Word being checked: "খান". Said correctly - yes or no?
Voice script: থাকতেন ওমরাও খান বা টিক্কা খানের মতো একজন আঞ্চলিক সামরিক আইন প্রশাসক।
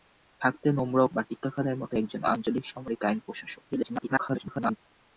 no